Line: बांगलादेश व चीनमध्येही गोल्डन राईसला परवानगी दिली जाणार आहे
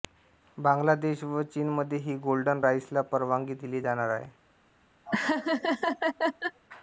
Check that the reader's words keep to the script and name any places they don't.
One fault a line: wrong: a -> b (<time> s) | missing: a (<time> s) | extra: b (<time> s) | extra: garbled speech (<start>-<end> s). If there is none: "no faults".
no faults